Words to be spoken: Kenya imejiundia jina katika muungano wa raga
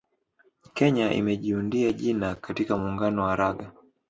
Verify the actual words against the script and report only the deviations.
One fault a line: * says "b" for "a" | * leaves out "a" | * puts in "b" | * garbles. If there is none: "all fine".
all fine